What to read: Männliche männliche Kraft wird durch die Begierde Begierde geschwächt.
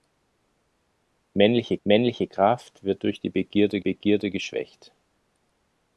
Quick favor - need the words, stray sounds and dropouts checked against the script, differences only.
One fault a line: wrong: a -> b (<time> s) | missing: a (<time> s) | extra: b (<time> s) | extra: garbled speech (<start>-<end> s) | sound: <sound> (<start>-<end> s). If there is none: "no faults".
no faults